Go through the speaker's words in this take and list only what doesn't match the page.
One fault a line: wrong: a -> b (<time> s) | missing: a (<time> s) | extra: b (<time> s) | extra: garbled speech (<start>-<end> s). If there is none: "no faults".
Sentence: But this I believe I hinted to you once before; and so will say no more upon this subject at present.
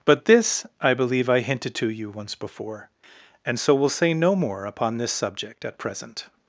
no faults